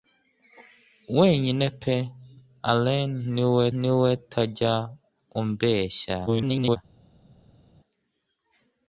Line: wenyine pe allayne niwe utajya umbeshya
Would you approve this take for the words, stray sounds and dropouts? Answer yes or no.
no